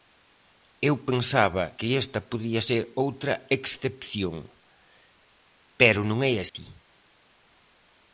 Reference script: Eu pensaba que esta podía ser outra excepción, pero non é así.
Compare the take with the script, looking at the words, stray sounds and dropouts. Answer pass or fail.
fail